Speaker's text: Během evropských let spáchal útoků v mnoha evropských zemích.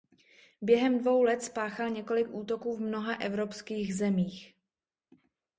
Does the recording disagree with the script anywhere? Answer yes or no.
yes